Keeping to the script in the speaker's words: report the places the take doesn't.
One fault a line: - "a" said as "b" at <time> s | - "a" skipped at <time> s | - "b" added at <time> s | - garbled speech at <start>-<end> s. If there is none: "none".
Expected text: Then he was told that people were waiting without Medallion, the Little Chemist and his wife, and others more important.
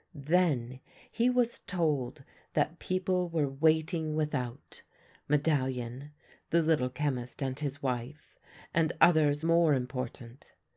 none